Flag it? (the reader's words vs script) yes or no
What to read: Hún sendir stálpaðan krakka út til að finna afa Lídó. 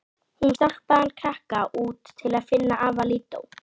yes